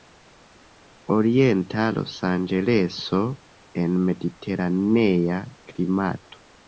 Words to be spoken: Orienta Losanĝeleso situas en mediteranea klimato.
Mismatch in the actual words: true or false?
true